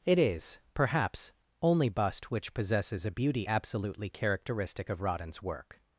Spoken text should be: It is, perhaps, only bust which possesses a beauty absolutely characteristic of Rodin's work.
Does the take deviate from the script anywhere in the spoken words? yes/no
no